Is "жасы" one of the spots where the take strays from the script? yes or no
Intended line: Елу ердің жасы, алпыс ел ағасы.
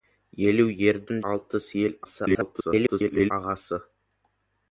yes